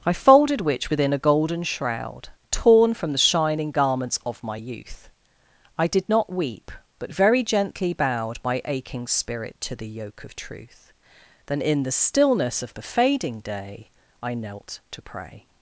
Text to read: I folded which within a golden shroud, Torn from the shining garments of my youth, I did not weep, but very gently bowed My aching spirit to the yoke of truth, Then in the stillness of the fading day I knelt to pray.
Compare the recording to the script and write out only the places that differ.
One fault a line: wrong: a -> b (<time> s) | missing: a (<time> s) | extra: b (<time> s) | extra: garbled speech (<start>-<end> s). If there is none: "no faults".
no faults